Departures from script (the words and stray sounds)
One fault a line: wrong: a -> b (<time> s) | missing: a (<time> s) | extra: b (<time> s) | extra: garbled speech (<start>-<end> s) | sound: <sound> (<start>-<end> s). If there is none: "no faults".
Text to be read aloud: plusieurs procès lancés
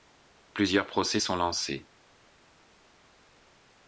extra: sont (1.2 s)